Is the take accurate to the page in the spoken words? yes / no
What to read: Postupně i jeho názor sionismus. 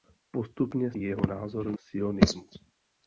yes